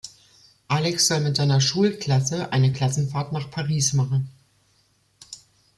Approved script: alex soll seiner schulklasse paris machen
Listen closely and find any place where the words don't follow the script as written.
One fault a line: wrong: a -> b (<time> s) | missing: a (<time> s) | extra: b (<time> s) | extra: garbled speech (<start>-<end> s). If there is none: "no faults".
extra: mit (1.2 s)
extra: eine klassenfahrt nach (2.5 s)